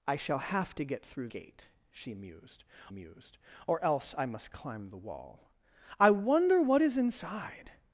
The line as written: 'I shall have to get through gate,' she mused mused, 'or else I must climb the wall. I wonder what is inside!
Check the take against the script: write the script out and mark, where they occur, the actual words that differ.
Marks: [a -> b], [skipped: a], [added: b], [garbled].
'I shall have to get through gate,' she mused mused, 'or else I must climb the wall. I wonder what is inside!